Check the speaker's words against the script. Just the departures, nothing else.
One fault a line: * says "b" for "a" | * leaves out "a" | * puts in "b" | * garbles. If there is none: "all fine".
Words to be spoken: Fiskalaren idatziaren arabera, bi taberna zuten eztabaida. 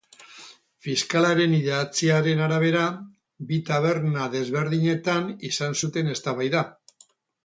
* puts in "desberdinetan izan"